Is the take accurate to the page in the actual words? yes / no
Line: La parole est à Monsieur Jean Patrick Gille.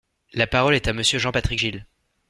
yes